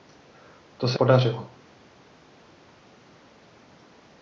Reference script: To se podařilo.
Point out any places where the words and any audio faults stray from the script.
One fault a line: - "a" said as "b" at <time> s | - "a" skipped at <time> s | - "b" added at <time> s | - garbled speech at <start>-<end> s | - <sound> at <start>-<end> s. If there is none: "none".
none